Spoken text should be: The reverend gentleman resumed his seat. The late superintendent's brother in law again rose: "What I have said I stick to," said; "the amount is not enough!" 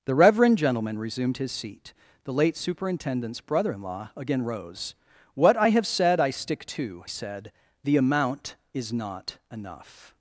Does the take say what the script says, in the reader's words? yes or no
yes